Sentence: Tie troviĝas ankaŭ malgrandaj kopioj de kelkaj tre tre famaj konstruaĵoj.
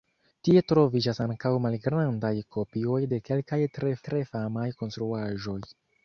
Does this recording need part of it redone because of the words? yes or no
no